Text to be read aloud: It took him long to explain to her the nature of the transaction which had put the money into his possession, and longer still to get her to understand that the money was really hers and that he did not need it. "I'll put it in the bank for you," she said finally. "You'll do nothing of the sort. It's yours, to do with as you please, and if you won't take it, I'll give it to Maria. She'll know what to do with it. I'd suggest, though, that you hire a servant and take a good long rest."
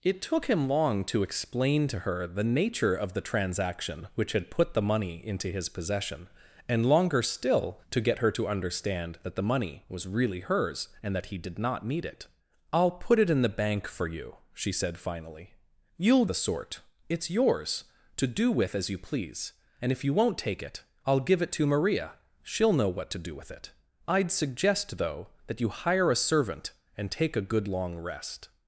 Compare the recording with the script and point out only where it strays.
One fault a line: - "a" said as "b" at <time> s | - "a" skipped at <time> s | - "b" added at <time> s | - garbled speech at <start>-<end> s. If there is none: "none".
- "do nothing of" skipped at 16.2 s